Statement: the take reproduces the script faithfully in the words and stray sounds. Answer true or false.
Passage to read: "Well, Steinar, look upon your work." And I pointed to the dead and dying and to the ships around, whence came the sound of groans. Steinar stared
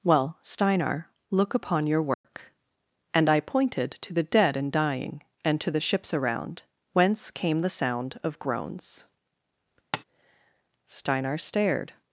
false